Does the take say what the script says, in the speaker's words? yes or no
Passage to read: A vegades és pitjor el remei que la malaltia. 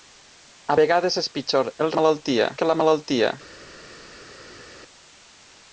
no